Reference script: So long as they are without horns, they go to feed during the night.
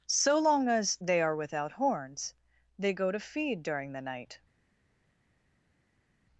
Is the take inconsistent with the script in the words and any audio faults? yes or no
no